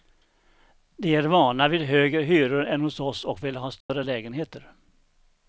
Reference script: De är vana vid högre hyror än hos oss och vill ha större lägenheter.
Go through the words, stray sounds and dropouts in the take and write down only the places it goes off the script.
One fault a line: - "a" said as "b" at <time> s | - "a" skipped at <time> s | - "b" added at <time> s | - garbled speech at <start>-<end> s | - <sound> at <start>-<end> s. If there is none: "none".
- dropout at 3.8-3.9 s